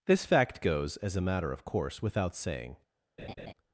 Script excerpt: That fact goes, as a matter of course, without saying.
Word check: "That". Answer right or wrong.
wrong